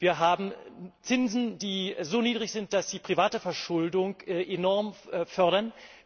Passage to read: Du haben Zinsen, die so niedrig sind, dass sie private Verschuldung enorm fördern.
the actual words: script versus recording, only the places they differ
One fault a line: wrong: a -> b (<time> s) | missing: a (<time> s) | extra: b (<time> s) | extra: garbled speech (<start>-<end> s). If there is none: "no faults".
wrong: Du -> Wir (0.0 s)